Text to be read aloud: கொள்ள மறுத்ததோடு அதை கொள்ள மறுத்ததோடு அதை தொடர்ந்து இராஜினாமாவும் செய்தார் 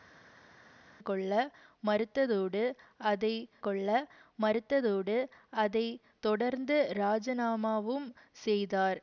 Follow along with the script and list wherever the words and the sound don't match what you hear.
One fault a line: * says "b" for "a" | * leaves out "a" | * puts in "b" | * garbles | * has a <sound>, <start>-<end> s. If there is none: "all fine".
all fine